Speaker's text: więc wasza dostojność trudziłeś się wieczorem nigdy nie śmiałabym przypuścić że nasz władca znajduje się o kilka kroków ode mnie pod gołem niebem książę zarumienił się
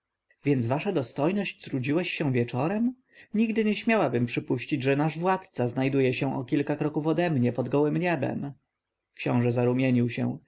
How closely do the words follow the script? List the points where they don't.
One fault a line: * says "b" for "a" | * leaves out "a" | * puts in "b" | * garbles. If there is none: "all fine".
all fine